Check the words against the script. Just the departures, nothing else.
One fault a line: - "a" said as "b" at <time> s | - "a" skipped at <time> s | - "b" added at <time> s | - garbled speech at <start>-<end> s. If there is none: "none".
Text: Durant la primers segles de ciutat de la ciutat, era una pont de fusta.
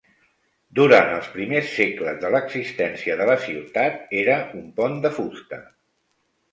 - "la" said as "els" at 1.2 s
- "ciutat" said as "l'existència" at 2.4 s
- "una" said as "un" at 4.6 s